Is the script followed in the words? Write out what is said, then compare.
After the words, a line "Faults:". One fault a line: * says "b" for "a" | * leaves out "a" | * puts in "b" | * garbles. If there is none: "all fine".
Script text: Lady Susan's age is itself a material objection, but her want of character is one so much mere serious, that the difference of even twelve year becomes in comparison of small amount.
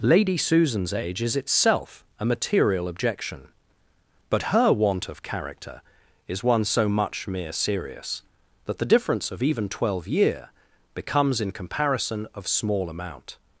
Lady Susan's age is itself a material objection, but her want of character is one so much mere serious, that the difference of even twelve year becomes in comparison of small amount.
Faults:
all fine